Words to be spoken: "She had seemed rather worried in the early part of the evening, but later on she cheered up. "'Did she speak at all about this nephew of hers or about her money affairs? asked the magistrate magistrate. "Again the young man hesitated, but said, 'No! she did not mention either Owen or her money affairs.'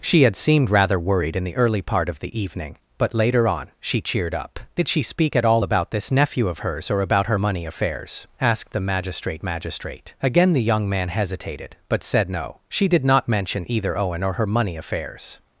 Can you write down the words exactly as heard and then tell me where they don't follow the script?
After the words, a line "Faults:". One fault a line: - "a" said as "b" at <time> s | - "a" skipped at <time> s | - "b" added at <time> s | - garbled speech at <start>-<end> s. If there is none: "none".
"She had seemed rather worried in the early part of the evening, but later on she cheered up. "'Did she speak at all about this nephew of hers or about her money affairs? asked the magistrate magistrate. "Again the young man hesitated, but said, 'No! she did not mention either Owen or her money affairs.'
Faults:
none